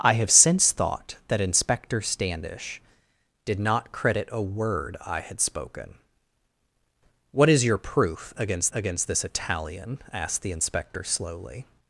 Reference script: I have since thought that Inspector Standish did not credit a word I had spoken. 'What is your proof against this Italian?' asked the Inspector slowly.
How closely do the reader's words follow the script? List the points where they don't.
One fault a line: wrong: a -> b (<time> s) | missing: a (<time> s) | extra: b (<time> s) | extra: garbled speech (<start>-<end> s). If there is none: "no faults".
extra: against (8.7 s)